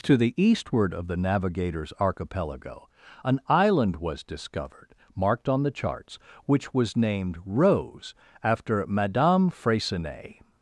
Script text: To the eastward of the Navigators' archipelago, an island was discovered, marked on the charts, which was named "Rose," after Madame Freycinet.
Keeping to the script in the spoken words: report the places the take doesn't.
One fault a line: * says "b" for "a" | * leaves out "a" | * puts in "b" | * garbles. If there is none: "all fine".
all fine